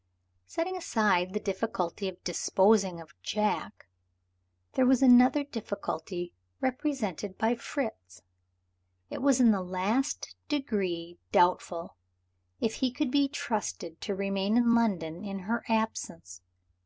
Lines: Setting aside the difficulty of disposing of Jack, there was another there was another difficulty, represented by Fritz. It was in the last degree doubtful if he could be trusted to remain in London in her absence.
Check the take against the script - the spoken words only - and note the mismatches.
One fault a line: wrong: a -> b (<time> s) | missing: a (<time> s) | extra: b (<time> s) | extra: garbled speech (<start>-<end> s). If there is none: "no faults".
missing: there was another (5.4 s)